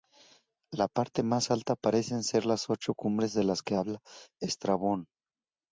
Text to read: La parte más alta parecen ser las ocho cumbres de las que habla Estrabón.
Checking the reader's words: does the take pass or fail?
pass